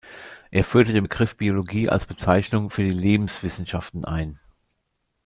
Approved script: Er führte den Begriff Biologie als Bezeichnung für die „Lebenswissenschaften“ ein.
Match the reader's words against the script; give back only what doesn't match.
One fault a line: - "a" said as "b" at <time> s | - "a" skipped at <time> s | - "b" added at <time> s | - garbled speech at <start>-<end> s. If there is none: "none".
none